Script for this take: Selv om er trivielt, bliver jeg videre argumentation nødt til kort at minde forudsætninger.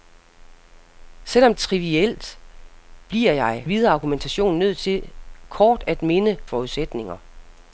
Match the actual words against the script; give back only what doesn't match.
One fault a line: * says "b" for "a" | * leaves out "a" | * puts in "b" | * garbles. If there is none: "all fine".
all fine